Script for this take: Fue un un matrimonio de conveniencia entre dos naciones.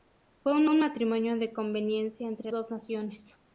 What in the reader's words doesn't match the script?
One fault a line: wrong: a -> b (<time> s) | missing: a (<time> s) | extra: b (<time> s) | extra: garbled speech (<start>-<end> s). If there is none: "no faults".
no faults